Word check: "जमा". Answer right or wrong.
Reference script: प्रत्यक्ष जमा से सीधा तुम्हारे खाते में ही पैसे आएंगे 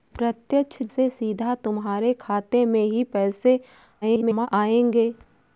wrong